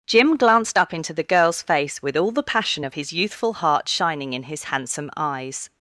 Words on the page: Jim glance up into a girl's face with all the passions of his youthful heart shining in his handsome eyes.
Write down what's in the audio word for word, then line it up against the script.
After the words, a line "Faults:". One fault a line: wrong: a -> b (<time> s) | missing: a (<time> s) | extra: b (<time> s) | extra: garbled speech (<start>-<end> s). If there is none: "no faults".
Jim glanced up into the girl's face with all the passion of his youthful heart shining in his handsome eyes.
Faults:
wrong: glance -> glanced (0.3 s)
wrong: a -> the (1.1 s)
wrong: passions -> passion (2.4 s)